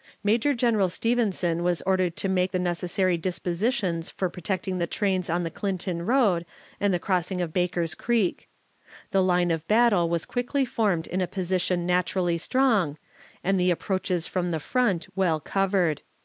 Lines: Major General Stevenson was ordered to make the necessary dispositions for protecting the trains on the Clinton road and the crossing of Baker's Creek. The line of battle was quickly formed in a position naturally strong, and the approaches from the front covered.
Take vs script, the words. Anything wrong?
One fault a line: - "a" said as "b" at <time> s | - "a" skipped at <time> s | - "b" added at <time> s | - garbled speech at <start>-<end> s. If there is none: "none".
- "well" added at 15.2 s